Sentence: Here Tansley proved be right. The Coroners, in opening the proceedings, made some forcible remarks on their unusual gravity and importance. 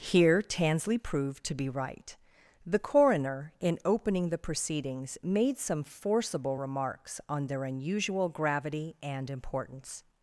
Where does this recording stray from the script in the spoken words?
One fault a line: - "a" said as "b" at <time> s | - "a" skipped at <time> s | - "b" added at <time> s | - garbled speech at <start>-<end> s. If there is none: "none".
- "to" added at 1.4 s
- "Coroners" said as "Coroner" at 2.8 s